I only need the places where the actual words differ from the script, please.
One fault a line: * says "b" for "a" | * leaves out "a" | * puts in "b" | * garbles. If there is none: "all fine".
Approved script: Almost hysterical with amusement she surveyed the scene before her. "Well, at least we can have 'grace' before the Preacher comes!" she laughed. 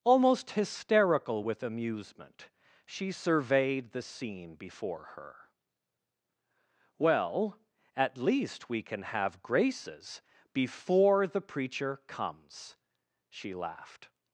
* says "graces" for "grace"